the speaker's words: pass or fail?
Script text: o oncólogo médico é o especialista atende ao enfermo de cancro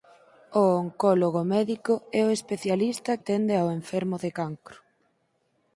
pass